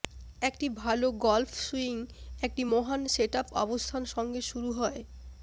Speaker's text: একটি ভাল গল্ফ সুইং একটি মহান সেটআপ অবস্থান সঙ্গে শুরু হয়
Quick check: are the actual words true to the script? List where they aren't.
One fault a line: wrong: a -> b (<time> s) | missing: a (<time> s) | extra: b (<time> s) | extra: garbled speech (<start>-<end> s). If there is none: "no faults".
no faults